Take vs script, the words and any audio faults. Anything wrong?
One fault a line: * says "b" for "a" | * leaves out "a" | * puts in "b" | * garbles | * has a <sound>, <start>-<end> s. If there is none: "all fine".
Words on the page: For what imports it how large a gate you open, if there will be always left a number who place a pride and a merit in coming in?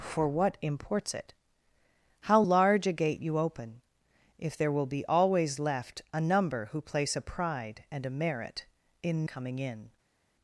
all fine